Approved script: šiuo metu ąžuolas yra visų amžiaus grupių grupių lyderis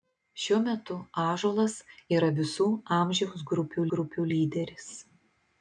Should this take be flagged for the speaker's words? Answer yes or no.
no